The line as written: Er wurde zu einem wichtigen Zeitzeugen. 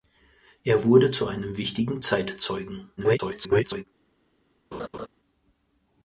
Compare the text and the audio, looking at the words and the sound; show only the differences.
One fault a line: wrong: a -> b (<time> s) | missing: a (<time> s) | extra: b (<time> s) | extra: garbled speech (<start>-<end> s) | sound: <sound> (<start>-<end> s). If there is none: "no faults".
extra: garbled speech (3.0-3.8 s)
sound: laugh (4.7-5.1 s)